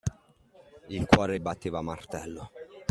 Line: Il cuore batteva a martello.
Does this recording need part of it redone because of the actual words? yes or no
no